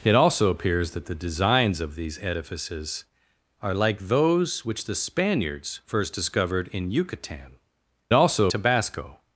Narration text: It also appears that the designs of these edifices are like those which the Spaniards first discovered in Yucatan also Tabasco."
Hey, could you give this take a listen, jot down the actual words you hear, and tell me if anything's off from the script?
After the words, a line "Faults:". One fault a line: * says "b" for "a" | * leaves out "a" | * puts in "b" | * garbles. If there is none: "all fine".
It also appears that the designs of these edifices are like those which the Spaniards first discovered in Yucatan also Tabasco."
Faults:
all fine